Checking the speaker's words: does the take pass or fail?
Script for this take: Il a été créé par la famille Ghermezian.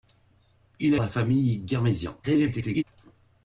fail